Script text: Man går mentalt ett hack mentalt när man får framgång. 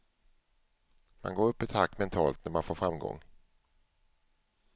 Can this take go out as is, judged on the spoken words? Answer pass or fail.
fail